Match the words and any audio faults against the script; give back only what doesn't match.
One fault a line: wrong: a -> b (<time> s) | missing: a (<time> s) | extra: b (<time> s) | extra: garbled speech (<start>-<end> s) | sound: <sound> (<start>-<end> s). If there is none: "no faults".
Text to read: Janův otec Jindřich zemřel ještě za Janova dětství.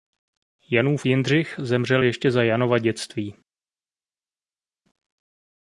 missing: otec (1.1 s)